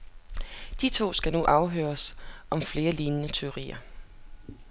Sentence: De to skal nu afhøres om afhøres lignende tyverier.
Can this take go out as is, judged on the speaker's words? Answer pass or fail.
fail